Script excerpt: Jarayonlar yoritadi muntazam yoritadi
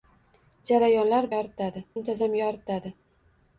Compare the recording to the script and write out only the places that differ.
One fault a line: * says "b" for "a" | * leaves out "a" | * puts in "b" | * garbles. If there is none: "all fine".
all fine